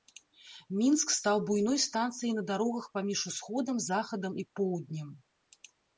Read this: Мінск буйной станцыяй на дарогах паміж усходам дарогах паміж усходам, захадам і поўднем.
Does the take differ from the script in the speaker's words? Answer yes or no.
yes